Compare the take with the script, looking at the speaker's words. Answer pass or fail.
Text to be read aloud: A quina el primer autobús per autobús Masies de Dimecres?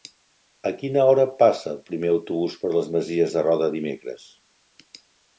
fail